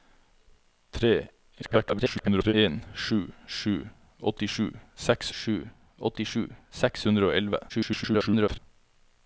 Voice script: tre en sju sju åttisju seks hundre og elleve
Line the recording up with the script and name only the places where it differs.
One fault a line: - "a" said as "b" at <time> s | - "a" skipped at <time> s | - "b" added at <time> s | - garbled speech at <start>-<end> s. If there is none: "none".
- garbled speech at 1.6-2.5 s
- "sju åttisju seks" added at 5.4 s
- garbled speech at 7.7-8.6 s